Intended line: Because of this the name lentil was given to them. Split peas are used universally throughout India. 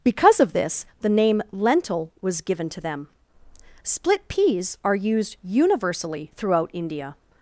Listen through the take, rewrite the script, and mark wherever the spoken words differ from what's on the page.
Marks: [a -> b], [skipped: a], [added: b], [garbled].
Because of this the name lentil was given to them. Split peas are used universally throughout India.